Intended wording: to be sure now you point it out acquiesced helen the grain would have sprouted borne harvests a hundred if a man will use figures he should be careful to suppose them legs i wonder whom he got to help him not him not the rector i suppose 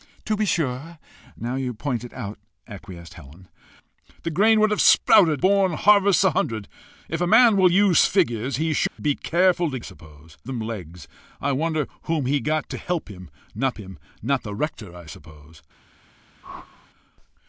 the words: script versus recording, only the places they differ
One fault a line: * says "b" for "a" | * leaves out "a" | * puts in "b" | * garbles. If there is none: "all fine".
all fine